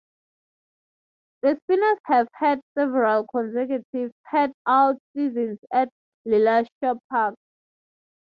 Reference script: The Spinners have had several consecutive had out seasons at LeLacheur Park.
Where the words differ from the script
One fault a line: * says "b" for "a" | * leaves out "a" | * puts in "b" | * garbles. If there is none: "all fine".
all fine